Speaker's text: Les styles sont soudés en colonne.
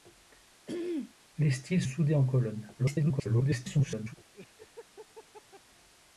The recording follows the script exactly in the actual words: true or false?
false